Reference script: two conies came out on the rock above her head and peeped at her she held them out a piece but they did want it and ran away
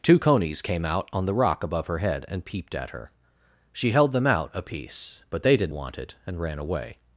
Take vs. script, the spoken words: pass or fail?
pass